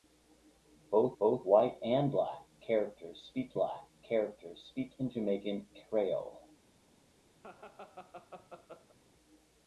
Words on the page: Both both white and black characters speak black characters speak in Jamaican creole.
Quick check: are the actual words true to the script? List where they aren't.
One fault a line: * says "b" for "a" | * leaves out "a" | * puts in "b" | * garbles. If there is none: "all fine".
all fine